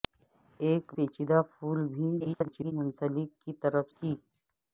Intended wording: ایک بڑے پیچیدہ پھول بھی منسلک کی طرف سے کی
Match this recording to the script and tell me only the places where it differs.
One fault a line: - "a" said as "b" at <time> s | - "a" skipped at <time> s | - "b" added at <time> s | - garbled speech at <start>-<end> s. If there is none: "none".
- "بڑے" skipped at 0.8 s
- garbled speech at 2.2-2.7 s
- "سے" skipped at 3.9 s